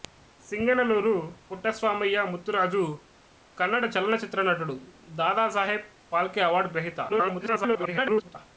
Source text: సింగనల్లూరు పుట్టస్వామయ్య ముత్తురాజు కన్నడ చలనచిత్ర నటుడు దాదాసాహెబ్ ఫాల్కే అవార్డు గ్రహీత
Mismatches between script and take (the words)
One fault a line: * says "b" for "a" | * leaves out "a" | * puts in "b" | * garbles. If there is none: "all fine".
* garbles